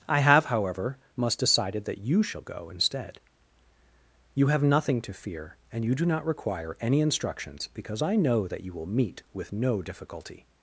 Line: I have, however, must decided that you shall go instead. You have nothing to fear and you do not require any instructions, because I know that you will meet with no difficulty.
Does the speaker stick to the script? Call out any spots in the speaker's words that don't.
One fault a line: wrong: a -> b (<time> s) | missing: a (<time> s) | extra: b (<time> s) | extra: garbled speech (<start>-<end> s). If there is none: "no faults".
no faults